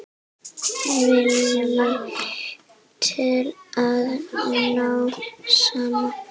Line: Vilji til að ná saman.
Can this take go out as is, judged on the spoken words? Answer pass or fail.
pass